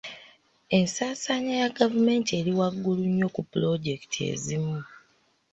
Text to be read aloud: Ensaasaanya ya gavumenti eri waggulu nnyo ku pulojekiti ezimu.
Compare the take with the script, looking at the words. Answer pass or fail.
pass